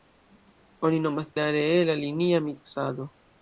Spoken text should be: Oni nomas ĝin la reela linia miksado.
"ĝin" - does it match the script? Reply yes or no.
no